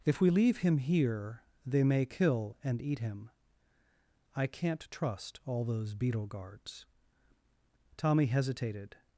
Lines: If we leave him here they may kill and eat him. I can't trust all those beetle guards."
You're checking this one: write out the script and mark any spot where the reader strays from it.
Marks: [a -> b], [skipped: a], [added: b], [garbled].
If we leave him here they may kill and eat him. I can't trust all those beetle guards." [added: Tommy hesitated]